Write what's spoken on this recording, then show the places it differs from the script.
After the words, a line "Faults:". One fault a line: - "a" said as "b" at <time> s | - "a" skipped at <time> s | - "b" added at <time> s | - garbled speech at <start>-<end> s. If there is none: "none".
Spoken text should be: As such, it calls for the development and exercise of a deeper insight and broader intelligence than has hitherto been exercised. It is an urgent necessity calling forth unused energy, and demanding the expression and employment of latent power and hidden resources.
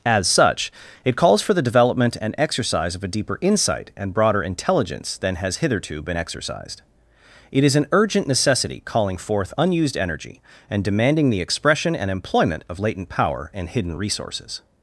As such, it calls for the development and exercise of a deeper insight and broader intelligence than has hitherto been exercised. It is an urgent necessity calling forth unused energy, and demanding the expression and employment of latent power and hidden resources.
Faults:
none